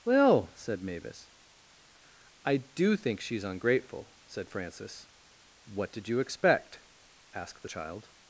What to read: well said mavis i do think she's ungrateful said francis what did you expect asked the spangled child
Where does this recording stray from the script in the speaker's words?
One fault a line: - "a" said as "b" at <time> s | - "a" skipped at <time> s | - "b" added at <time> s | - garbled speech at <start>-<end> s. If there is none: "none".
- "spangled" skipped at 7.7 s